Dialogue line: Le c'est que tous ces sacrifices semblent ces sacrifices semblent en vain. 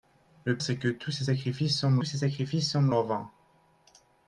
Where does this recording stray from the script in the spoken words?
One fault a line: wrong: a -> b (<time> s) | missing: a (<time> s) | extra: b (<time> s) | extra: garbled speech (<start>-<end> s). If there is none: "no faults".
no faults